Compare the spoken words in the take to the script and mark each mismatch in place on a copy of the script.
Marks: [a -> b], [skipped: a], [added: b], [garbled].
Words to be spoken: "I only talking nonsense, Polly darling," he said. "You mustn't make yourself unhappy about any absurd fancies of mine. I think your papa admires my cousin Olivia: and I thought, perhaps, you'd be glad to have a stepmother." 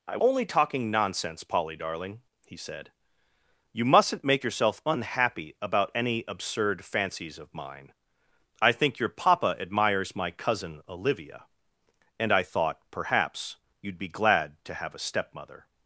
"I only talking nonsense, Polly darling," he said. "You mustn't make yourself unhappy about any absurd fancies of mine. I think your papa admires my cousin Olivia: and I thought, perhaps, you'd be glad to have a stepmother."